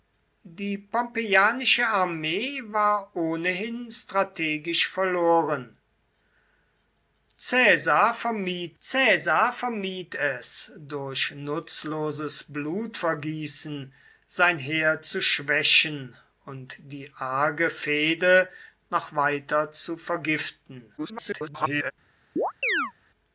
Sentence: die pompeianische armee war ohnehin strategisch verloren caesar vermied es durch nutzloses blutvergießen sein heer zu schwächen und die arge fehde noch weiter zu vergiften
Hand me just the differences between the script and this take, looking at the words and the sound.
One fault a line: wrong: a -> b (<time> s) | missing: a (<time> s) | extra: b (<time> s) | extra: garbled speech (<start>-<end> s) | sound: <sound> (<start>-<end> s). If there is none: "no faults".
extra: caesar vermied (8.8 s)
extra: garbled speech (21.0-21.9 s)
sound: chirp (22.4-22.9 s)